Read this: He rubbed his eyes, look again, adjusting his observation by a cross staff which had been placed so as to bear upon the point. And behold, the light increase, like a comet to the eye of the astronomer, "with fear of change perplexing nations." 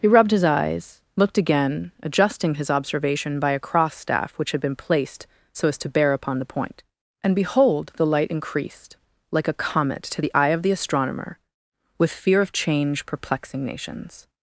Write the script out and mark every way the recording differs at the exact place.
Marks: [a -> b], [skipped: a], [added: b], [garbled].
He rubbed his eyes, [look -> looked] again, adjusting his observation by a cross staff which had been placed so as to bear upon the point. And behold, the light [increase, -> increased] like a comet to the eye of the astronomer, "with fear of change perplexing nations."